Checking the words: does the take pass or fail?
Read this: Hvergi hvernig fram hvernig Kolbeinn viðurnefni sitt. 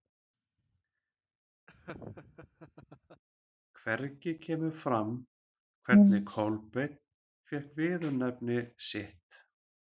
fail